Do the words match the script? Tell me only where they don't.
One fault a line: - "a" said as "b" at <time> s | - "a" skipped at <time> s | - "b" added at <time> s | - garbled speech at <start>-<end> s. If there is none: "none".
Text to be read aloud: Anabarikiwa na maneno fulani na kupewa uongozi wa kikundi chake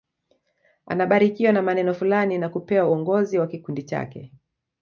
none